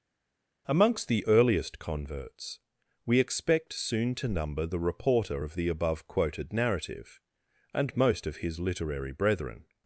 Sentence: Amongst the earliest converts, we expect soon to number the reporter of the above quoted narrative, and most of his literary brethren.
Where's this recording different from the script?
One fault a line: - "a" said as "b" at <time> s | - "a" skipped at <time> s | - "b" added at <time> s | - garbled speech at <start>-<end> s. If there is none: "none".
none